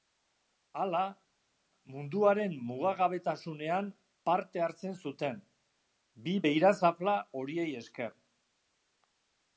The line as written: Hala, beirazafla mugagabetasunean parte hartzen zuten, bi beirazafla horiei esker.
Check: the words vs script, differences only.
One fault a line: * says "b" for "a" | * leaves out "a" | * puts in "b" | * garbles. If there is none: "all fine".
* says "munduaren" for "beirazafla"